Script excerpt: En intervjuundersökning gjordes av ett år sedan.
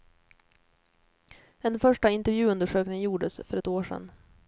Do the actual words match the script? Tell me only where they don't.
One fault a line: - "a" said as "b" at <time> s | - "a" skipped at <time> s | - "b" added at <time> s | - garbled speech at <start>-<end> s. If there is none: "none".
- "första" added at 1.8 s
- "av" said as "för" at 3.5 s